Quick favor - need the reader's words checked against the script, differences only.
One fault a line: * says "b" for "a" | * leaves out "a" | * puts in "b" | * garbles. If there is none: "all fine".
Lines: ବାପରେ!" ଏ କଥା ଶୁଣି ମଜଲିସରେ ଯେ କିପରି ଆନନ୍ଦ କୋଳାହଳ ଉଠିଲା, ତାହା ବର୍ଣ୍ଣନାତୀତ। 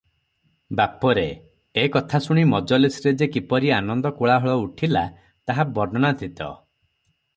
all fine